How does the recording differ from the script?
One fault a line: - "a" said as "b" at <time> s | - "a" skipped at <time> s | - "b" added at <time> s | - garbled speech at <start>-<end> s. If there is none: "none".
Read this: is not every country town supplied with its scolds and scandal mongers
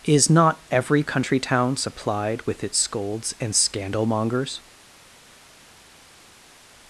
none